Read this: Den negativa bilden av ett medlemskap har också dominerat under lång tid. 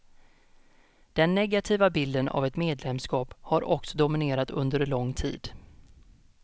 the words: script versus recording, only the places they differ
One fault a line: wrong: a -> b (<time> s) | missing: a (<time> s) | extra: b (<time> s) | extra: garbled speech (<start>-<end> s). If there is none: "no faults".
no faults